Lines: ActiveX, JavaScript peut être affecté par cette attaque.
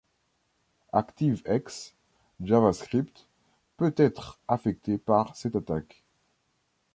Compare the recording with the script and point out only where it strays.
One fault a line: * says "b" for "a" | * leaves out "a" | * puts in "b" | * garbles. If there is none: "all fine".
all fine